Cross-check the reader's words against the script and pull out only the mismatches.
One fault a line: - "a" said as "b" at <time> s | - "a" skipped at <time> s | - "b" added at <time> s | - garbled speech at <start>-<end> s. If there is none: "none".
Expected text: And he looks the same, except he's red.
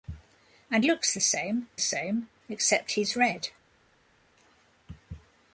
- "he" skipped at 0.8 s
- "same" added at 1.8 s